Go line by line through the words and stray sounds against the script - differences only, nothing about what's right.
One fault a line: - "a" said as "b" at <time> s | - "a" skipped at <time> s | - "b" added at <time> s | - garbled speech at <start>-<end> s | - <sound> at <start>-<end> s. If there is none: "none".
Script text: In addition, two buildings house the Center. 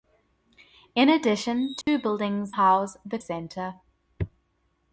- dropout at 1.8-1.9 s